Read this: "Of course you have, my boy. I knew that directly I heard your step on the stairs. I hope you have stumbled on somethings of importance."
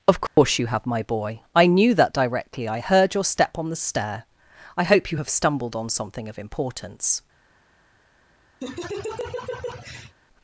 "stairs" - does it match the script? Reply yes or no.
no